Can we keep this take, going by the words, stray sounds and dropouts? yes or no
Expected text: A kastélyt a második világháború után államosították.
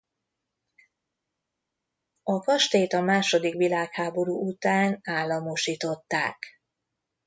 yes